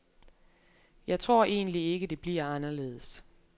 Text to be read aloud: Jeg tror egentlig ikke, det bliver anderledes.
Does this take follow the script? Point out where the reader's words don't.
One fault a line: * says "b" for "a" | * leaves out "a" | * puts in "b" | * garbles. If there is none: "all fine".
all fine